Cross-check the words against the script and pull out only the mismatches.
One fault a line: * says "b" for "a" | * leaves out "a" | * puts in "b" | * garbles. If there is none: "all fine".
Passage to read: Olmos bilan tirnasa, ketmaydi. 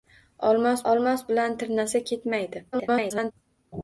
* puts in "olmos"
* garbles